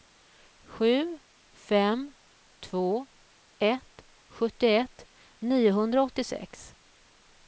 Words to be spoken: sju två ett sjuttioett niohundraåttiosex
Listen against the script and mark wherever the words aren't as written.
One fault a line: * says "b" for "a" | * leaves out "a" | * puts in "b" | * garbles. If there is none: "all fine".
* puts in "fem"